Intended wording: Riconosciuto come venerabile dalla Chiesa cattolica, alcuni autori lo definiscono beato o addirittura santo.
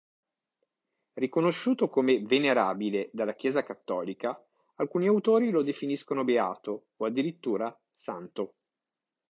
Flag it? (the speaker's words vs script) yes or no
no